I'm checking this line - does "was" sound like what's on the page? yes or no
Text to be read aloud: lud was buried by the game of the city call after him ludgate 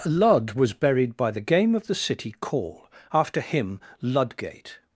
yes